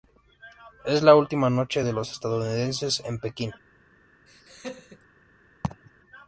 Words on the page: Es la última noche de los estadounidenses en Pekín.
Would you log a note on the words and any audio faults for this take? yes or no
yes